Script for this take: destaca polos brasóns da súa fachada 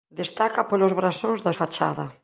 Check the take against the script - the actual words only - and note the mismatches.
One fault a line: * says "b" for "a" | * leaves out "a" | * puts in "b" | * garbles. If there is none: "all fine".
* leaves out "súa"